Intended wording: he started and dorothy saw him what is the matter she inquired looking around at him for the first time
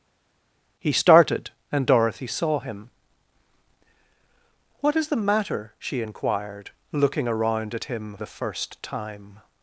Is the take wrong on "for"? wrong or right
wrong